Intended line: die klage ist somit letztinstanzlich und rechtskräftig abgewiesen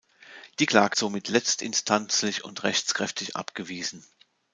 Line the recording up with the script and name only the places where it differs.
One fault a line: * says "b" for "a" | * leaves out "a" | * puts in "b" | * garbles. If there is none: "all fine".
* leaves out "ist"